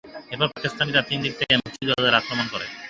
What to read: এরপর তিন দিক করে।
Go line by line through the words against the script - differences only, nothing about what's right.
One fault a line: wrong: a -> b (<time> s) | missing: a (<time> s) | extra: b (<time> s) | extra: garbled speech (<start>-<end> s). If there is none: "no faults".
extra: পাকিস্তানিরা (0.5 s)
extra: থেকে মুক্তিযোদ্ধাদের আক্রমণ (1.4 s)